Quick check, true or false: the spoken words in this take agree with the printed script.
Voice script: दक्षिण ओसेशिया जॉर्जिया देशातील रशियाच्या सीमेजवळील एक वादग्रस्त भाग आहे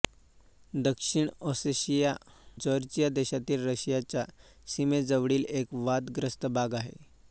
true